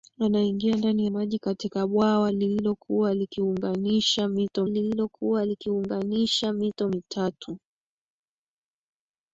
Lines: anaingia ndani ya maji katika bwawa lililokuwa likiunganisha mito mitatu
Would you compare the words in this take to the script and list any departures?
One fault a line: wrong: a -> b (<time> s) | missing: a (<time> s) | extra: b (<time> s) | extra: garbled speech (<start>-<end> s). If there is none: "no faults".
missing: ya (1.1 s)
extra: lililokuwa likiunganisha mito (4.7 s)